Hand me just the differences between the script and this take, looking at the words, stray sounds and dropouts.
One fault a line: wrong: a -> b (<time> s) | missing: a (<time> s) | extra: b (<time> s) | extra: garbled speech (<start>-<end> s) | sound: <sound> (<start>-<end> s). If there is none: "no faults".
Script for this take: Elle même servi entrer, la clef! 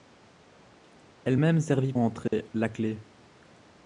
sound: dropout (2.3-2.3 s)